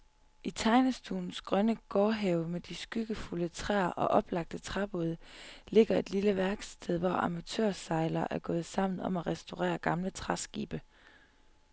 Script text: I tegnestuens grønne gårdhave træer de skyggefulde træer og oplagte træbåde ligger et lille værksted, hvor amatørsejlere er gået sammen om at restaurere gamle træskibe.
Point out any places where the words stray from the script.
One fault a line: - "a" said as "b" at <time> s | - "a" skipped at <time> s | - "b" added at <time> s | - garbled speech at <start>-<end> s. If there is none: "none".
- "træer" said as "med" at 2.5 s